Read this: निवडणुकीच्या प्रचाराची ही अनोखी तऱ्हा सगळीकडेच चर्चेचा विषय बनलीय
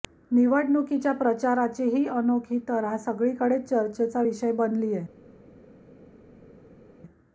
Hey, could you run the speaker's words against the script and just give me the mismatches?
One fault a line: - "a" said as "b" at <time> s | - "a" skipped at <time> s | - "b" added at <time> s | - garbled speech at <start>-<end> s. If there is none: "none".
none